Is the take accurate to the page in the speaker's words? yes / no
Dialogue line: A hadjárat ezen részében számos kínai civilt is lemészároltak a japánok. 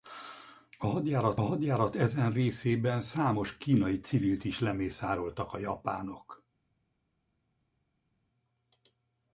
no